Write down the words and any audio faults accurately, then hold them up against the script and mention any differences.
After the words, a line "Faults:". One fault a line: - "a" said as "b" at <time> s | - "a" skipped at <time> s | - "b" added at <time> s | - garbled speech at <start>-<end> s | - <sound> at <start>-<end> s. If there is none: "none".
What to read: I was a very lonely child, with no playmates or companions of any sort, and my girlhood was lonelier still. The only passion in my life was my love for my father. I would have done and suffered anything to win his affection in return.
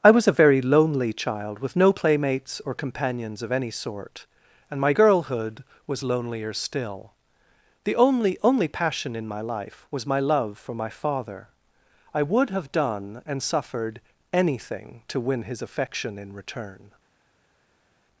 I was a very lonely child, with no playmates or companions of any sort, and my girlhood was lonelier still. The only only passion in my life was my love for my father. I would have done and suffered anything to win his affection in return.
Faults:
- "only" added at 8.4 s